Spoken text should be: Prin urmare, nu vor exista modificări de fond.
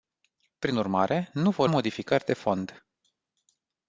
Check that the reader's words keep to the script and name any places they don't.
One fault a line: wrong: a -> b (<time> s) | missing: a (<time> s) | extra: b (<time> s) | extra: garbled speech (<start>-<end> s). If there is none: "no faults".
missing: exista (1.7 s)